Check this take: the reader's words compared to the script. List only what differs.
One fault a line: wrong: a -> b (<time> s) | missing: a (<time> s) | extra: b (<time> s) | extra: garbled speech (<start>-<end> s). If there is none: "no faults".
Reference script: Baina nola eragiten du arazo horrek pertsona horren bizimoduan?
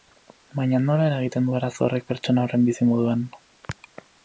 no faults